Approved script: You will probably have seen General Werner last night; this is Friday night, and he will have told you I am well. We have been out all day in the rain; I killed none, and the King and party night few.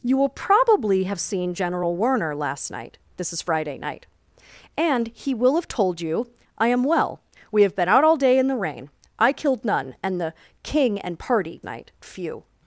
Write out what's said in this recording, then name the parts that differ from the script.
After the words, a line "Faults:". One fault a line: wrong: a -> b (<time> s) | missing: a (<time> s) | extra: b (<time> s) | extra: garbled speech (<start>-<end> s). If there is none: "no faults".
You will probably have seen General Werner last night; this is Friday night, and he will have told you I am well. We have been out all day in the rain; I killed none, and the King and party night few.
Faults:
no faults